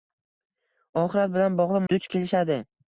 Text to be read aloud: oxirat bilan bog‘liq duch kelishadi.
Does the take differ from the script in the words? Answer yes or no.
no